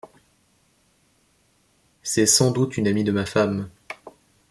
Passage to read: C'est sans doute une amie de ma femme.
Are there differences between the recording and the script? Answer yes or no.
no